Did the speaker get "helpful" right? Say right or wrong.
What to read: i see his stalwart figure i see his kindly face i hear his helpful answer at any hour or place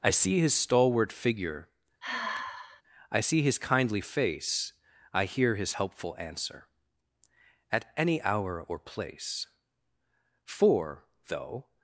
right